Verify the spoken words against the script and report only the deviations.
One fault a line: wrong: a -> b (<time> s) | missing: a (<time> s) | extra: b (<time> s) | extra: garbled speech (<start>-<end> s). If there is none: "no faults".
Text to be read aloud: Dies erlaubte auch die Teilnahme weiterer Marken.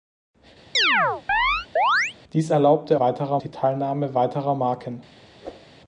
wrong: auch -> weiterer (3.0 s)